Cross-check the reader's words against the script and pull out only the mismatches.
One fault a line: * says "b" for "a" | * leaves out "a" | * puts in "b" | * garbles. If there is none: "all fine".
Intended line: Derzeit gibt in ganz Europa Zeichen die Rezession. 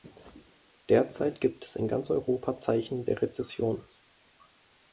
* puts in "es"
* says "der" for "die"